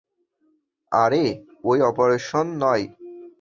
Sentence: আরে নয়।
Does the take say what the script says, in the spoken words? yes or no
no